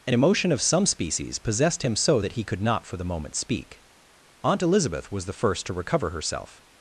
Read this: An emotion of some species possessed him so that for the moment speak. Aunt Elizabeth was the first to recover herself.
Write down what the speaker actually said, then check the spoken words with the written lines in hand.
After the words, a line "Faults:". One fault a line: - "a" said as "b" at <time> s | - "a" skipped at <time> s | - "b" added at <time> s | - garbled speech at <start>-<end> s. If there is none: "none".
An emotion of some species possessed him so that he could not for the moment speak. Aunt Elizabeth was the first to recover herself.
Faults:
- "he could not" added at 2.3 s